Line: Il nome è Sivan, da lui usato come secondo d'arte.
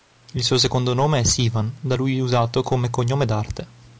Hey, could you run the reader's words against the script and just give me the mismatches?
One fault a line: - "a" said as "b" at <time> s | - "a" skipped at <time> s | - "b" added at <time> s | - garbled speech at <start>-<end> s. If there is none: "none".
- "suo secondo" added at 0.4 s
- "secondo" said as "cognome" at 2.9 s